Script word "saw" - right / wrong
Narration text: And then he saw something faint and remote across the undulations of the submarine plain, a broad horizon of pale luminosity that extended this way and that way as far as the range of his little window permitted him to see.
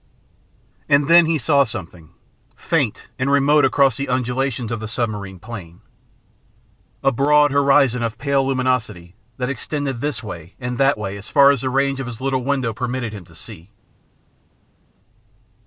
right